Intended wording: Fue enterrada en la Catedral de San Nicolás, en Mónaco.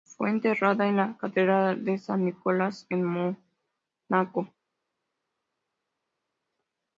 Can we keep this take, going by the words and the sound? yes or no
yes